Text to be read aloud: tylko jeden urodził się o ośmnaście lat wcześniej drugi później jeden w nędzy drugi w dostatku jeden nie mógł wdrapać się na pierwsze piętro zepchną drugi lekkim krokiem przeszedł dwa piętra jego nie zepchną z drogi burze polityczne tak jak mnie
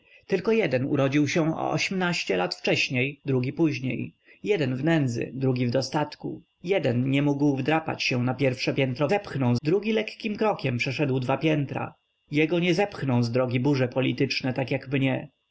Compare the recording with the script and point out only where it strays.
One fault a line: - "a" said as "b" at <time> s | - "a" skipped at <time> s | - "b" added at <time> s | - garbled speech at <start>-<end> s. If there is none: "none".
none